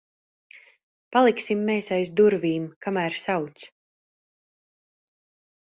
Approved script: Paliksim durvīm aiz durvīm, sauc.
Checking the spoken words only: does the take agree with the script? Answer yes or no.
no